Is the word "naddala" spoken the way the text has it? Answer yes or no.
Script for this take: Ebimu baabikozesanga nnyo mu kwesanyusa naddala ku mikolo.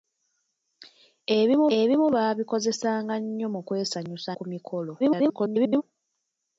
no